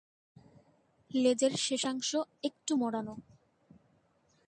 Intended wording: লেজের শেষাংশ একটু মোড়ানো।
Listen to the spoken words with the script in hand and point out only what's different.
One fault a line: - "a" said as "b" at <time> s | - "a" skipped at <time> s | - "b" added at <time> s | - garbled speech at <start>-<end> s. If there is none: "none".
none